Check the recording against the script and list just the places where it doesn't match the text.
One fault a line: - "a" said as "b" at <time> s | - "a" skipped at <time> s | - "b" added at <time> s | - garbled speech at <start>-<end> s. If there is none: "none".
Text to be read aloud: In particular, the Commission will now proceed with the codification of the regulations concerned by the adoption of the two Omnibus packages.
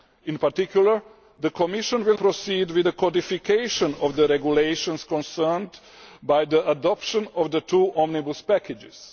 - "now" skipped at 2.2 s